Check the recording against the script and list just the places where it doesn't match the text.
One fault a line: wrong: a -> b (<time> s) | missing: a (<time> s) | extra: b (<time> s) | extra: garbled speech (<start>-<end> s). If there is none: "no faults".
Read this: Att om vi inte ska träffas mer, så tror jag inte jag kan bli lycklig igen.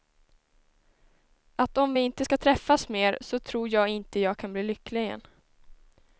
no faults